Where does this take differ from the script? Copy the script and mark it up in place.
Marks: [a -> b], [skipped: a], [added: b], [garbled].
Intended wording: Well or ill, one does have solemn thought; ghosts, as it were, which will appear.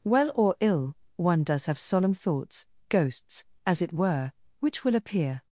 Well or ill, one does have solemn [thought; -> thoughts] ghosts, as it were, which will appear.